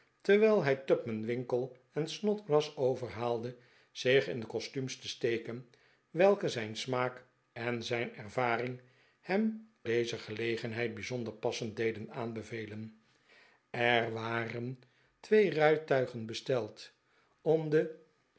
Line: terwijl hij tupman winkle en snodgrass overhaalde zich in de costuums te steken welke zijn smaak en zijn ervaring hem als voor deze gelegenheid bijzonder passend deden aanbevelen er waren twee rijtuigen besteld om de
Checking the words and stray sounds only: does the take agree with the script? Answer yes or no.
no